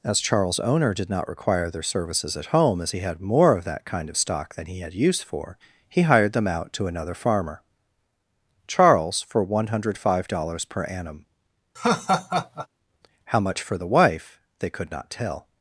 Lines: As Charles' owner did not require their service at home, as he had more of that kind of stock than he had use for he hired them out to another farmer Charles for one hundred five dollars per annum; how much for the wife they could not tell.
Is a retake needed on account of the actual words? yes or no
yes